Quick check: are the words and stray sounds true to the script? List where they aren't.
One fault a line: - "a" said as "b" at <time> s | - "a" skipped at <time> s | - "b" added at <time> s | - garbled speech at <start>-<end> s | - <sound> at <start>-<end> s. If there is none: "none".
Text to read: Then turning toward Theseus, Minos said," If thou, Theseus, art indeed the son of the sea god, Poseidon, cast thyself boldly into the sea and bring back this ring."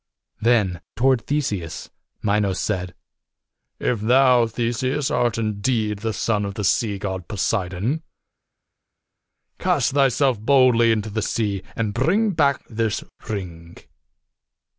- "turning" skipped at 0.8 s